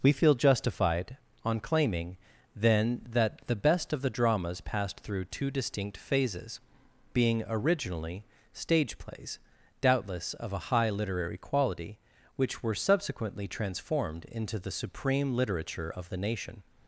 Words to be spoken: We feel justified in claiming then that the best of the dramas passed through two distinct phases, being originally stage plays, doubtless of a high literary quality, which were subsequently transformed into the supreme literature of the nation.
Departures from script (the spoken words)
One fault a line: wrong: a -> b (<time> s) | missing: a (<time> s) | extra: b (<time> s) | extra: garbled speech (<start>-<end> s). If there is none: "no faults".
wrong: in -> on (1.4 s)